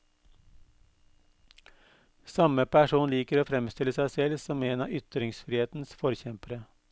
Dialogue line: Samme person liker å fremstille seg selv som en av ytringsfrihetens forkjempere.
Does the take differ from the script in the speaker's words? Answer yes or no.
no